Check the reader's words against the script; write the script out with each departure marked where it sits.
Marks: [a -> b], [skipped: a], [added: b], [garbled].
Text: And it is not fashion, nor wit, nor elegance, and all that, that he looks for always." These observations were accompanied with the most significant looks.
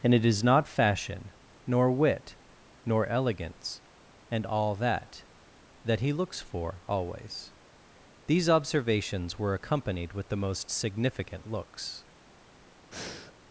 And it is not fashion, nor wit, nor elegance, and all that, that he looks for always." These observations were accompanied with the most significant looks.